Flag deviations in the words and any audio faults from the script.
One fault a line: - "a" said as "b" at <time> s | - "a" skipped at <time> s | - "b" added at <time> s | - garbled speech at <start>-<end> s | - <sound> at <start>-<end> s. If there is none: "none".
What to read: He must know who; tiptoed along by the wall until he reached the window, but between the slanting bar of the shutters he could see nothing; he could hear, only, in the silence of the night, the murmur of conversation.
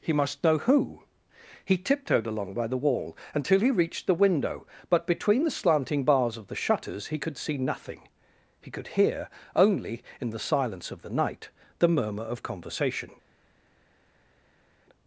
- "he" added at 1.6 s
- "bar" said as "bars" at 6.1 s